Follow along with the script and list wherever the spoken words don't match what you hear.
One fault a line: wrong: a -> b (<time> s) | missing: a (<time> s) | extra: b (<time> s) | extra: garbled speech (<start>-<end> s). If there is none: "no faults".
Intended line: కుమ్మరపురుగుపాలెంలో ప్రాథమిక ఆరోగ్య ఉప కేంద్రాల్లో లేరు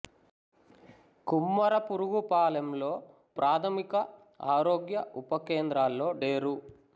no faults